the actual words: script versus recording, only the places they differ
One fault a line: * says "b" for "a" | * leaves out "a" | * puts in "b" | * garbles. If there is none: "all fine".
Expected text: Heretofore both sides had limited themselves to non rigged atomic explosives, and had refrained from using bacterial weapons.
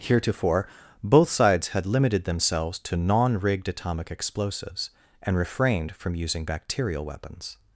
* leaves out "had"